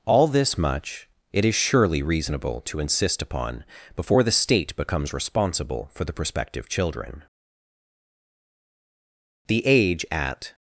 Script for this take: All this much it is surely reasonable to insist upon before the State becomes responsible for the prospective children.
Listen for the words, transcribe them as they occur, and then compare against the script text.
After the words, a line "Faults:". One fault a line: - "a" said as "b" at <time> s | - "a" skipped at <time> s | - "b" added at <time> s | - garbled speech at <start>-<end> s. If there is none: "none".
All this much it is surely reasonable to insist upon before the State becomes responsible for the prospective children. The age at
Faults:
- "The age at" added at 9.5 s